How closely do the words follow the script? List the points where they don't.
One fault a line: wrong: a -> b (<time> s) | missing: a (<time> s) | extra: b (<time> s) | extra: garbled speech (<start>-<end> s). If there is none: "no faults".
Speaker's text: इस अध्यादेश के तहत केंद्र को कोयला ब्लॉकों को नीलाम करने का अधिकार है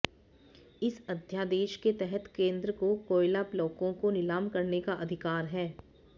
no faults